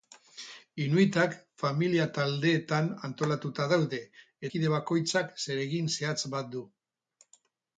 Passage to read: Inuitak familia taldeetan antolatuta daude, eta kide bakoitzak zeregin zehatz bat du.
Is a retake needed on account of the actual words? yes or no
yes